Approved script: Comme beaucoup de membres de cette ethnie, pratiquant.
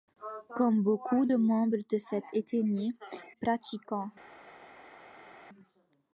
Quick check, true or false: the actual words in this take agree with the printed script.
true